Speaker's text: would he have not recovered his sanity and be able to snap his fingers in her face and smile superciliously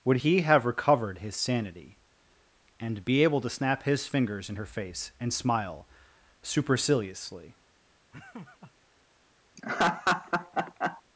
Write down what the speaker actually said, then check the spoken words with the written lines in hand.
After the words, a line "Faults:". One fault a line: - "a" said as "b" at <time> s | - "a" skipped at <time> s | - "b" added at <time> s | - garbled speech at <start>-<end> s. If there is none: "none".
would he have recovered his sanity and be able to snap his fingers in her face and smile superciliously
Faults:
- "not" skipped at 0.7 s